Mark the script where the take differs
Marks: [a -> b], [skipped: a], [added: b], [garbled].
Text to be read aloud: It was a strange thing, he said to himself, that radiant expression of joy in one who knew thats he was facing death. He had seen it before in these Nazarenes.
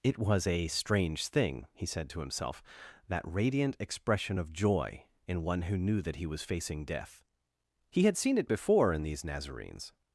It was a strange thing, he said to himself, that radiant expression of joy in one who knew [thats -> that] he was facing death. He had seen it before in these Nazarenes.